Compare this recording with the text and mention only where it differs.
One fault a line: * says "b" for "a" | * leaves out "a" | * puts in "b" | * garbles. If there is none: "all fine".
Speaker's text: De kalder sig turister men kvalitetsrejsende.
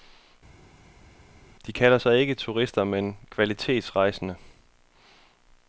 * puts in "ikke"